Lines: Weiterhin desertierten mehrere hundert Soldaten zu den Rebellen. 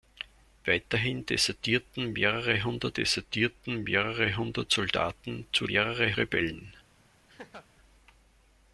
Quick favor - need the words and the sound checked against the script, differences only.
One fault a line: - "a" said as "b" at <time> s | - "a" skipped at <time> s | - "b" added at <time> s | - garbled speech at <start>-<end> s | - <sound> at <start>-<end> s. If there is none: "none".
- "desertierten mehrere hundert" added at 2.9 s
- "den" said as "mehrere" at 5.7 s
- laugh at 7.3-7.7 s